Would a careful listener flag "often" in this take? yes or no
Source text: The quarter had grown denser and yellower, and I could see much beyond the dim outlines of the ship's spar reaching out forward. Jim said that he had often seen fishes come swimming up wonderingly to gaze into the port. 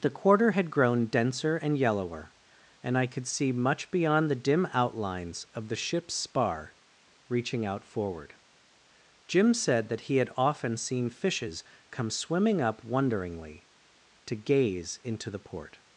no